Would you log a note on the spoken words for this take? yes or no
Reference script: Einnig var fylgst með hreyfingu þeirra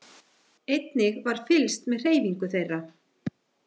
no